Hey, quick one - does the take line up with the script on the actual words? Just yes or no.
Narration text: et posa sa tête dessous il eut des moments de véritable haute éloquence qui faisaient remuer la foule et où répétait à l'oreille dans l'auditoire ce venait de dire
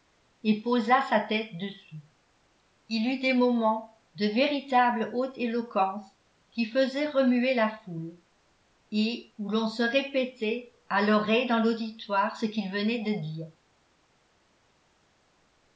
no